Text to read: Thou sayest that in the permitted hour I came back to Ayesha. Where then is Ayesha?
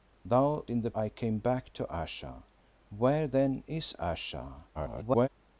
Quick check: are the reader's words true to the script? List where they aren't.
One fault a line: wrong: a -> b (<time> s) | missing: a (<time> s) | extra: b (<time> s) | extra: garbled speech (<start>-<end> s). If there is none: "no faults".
missing: sayest that (0.7 s)
missing: permitted hour (0.9 s)
extra: garbled speech (4.7-5.3 s)